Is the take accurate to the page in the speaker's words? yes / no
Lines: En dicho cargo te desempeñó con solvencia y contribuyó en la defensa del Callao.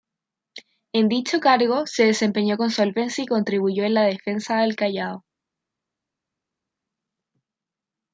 no